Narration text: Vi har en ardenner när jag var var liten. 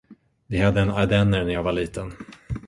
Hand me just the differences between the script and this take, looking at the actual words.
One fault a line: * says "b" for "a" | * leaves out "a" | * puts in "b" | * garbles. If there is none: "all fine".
* says "hade" for "har"
* leaves out "var"